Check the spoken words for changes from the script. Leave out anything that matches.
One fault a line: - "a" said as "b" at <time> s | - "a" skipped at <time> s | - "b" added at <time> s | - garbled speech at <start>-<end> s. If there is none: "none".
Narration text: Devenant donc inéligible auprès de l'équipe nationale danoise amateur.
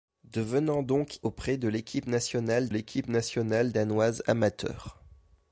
- "inéligible" skipped at 1.2 s
- "l'équipe nationale" added at 2.7 s